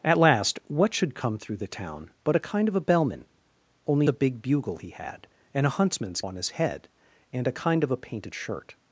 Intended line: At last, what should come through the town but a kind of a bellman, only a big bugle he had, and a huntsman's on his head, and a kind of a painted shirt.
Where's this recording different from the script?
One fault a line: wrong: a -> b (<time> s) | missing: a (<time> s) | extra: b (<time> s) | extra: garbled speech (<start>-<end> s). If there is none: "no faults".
no faults